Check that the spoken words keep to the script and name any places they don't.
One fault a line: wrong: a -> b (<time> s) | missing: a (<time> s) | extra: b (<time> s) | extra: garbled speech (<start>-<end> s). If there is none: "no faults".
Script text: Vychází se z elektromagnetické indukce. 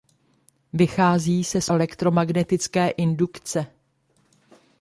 no faults